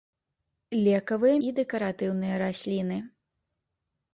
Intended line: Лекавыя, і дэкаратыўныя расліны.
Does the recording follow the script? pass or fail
pass